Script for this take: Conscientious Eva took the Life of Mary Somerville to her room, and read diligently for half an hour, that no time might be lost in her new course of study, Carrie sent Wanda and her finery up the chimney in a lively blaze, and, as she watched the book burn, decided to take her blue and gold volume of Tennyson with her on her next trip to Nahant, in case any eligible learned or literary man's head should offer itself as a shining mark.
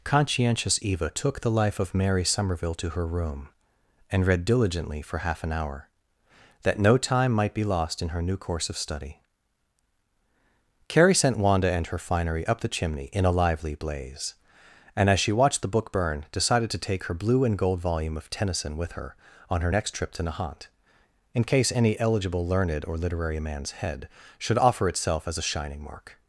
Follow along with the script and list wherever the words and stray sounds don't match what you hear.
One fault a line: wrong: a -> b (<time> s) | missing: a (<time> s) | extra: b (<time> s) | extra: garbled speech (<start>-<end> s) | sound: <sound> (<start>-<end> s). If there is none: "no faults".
no faults